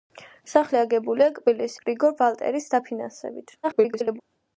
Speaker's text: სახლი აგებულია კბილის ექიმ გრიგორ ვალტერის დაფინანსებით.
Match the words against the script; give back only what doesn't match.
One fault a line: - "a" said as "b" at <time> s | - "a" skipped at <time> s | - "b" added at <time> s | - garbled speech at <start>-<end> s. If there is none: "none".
- "ექიმ" skipped at 1.8 s
- garbled speech at 3.6-4.2 s